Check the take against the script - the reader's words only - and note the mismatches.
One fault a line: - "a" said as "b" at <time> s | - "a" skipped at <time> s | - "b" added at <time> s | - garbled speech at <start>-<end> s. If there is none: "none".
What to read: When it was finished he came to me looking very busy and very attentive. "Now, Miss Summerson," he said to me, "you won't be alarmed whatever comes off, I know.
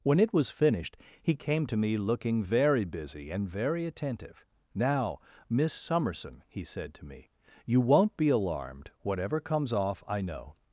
none